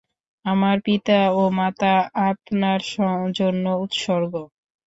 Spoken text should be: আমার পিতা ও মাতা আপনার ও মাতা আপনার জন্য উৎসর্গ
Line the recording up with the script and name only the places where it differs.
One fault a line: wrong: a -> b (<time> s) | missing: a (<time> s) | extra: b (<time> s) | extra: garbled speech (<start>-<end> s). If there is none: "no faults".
missing: ও মাতা আপনার (2.8 s)